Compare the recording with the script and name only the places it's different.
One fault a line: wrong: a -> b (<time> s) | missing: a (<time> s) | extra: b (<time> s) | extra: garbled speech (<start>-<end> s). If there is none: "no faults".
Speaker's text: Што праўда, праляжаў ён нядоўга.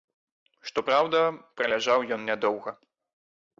no faults